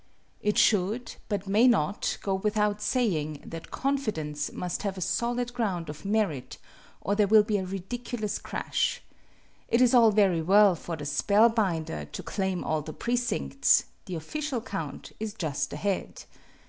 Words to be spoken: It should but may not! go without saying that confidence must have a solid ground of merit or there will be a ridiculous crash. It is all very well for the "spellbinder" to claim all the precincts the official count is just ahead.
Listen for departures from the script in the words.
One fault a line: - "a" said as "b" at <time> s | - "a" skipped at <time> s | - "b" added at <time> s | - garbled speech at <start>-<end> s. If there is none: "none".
none